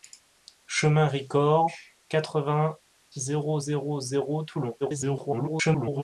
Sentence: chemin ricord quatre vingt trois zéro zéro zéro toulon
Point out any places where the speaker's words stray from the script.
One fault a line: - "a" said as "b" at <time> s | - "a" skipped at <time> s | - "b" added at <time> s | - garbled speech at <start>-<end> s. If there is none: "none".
- "trois" skipped at 2.8 s
- garbled speech at 4.8-6.0 s